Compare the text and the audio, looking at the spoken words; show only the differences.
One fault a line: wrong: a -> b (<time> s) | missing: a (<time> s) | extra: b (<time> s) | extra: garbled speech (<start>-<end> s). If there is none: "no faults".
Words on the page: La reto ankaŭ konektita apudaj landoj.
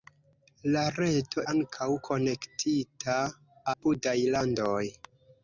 no faults